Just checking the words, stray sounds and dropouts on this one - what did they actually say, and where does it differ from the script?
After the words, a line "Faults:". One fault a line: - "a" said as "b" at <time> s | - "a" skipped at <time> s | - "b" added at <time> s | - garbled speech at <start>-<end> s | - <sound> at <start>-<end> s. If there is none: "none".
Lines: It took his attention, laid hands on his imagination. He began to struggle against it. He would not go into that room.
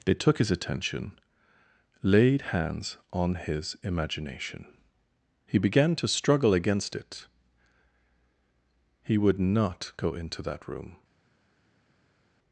They took his attention, laid hands on his imagination. He began to struggle against it. He would not go into that room.
Faults:
- "It" said as "They" at 0.1 s